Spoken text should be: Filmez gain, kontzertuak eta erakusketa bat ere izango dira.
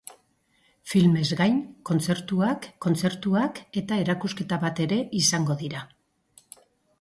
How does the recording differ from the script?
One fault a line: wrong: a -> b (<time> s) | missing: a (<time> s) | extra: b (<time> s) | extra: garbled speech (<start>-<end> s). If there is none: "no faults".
extra: kontzertuak (2.8 s)